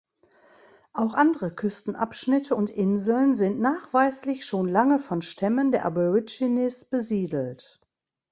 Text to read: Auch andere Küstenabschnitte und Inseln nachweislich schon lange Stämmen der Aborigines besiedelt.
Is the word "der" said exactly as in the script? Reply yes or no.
yes